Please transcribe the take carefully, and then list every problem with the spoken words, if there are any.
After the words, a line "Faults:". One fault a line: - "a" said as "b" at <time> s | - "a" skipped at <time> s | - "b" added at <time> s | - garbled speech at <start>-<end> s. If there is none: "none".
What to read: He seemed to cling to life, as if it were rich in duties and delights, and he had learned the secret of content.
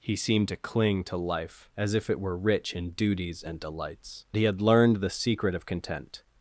He seemed to cling to life, as if it were rich in duties and delights, he had learned the secret of content.
Faults:
- "and" skipped at 4.2 s